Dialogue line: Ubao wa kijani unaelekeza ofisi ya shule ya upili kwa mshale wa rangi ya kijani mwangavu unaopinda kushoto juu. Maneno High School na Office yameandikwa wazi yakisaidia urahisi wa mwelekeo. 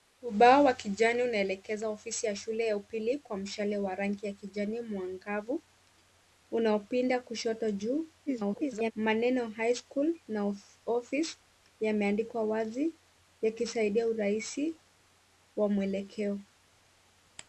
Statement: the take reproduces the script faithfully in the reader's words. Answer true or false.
false